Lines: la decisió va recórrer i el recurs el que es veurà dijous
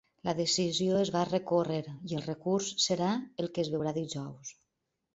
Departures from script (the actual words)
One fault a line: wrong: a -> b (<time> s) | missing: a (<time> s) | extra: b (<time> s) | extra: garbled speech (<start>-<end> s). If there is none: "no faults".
extra: es (1.0 s)
extra: serà (2.9 s)